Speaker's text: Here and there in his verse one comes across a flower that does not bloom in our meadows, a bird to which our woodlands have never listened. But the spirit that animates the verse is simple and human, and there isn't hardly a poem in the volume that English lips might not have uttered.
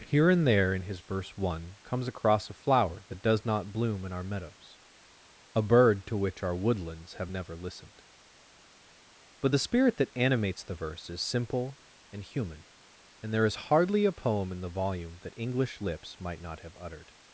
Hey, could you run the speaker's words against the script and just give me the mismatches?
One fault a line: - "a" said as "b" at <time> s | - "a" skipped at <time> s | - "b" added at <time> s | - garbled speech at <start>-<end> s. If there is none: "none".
- "isn't" said as "is" at 13.4 s